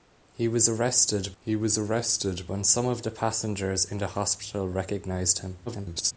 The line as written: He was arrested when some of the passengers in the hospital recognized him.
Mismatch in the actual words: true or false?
true